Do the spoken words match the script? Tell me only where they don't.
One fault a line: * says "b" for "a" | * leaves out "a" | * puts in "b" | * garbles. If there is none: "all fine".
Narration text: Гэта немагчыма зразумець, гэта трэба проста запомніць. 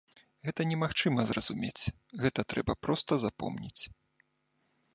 all fine